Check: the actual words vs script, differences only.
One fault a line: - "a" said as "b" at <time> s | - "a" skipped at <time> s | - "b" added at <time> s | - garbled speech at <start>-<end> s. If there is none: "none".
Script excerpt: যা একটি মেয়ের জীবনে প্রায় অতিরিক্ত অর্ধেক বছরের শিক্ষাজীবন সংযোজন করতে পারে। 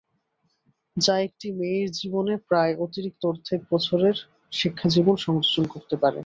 none